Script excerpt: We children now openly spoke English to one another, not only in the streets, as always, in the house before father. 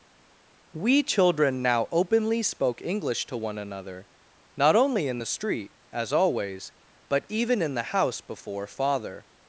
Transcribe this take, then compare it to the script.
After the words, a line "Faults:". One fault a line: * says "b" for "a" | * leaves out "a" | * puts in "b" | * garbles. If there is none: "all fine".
We children now openly spoke English to one another, not only in the street, as always, but even in the house before father.
Faults:
* says "street" for "streets"
* puts in "but even"